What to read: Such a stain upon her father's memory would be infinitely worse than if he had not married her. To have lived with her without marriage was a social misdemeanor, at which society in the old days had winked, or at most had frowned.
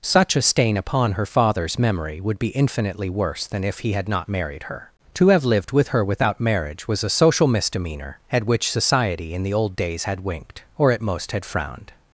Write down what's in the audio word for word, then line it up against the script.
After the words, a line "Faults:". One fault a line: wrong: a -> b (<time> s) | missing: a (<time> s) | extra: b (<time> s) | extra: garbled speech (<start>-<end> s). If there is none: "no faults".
Such a stain upon her father's memory would be infinitely worse than if he had not married her. To have lived with her without marriage was a social misdemeanor, at which society in the old days had winked, or at most had frowned.
Faults:
no faults